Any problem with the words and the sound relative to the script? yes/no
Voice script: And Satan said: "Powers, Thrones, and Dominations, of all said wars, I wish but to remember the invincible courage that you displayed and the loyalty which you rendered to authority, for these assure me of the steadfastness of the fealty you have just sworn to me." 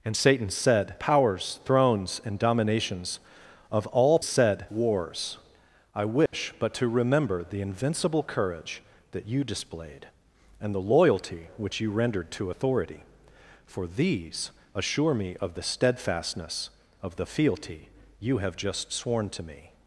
yes